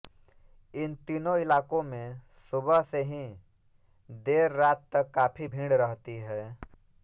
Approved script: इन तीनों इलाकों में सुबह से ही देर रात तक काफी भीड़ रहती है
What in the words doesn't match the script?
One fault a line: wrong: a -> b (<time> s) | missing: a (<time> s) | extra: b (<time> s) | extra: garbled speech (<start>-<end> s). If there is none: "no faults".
no faults